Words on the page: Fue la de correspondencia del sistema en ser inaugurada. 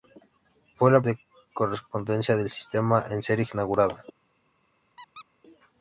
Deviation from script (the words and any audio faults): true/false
true